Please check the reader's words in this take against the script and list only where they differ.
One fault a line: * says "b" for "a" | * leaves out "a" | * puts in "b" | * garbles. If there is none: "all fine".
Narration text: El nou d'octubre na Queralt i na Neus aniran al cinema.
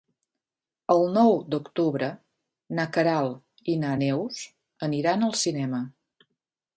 all fine